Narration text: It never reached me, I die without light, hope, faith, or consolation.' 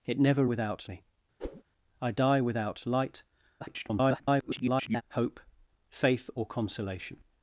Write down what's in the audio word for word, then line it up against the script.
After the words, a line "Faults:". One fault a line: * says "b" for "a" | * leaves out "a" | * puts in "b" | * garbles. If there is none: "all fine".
It never without me, I die without light, [garbled] hope, faith, or consolation.'
Faults:
* says "without" for "reached"
* garbles